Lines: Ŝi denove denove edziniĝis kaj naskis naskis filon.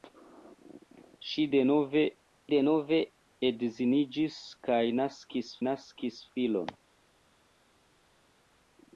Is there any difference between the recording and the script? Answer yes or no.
no